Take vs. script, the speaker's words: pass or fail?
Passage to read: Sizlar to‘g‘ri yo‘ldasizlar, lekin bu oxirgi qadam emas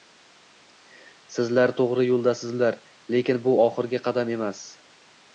pass